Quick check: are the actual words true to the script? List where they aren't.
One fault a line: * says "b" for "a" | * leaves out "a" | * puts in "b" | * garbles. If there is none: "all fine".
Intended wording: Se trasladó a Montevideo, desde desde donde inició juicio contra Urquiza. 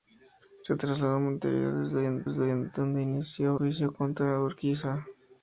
all fine